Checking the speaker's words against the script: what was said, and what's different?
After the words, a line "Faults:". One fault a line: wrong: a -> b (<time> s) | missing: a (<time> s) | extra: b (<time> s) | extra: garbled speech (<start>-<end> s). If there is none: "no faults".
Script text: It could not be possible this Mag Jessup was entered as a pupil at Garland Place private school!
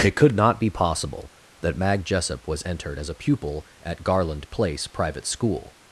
It could not be possible that Mag Jessup was entered as a pupil at Garland Place private school!
Faults:
wrong: this -> that (1.6 s)